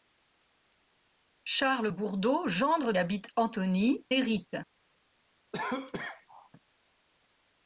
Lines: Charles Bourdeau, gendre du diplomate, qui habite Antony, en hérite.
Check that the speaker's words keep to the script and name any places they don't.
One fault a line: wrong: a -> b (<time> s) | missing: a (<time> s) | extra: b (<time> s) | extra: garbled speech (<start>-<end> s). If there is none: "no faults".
missing: du diplomate qui (2.9 s)
missing: en (4.1 s)